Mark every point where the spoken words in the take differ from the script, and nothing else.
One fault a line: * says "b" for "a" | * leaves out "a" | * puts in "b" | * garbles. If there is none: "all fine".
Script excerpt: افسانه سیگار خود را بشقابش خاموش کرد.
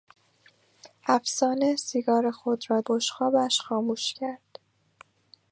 all fine